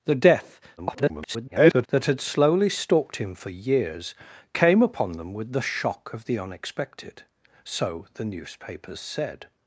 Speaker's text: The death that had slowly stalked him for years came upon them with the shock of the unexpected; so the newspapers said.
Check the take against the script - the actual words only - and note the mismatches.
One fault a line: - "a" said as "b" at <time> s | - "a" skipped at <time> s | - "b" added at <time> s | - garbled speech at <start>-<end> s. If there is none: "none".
- garbled speech at 0.8-1.9 s